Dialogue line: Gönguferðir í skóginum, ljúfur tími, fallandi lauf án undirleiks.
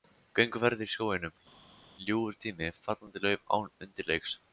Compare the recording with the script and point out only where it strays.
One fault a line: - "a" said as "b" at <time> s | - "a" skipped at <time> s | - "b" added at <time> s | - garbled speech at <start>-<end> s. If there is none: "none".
none